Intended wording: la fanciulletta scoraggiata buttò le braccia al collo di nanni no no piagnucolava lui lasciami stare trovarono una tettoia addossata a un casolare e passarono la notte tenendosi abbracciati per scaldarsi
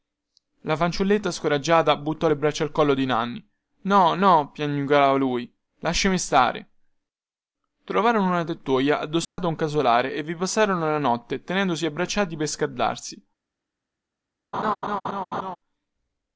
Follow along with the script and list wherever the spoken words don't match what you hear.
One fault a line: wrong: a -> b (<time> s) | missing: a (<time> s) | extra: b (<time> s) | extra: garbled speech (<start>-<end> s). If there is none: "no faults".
extra: vi (10.2 s)